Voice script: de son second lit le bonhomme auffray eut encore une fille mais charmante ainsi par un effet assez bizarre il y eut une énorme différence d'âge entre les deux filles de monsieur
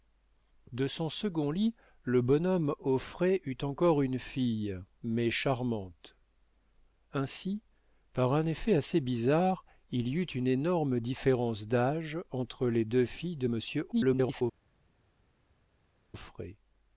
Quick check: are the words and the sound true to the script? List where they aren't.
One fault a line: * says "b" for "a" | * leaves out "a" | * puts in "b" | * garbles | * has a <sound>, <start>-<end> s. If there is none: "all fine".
* garbles